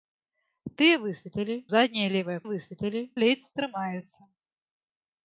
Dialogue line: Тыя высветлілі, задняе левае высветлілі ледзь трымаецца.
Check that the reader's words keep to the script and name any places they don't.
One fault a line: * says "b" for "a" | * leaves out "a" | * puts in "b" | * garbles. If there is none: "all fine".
all fine